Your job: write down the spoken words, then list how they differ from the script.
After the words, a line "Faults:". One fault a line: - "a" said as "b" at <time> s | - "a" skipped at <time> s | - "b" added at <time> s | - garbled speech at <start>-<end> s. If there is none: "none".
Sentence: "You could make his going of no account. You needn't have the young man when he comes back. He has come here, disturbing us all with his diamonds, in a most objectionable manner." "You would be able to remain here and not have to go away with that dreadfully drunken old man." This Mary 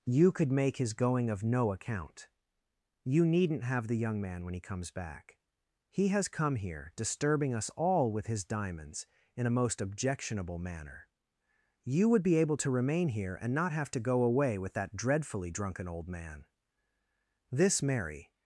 "You could make his going of no account. You needn't have the young man when he comes back. He has come here, disturbing us all with his diamonds, in a most objectionable manner." "You would be able to remain here and not have to go away with that dreadfully drunken old man." This Mary
Faults:
none